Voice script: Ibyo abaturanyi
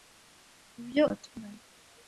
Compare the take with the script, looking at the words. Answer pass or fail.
pass